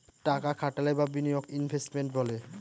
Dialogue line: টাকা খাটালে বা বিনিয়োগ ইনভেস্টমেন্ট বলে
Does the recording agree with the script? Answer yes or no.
yes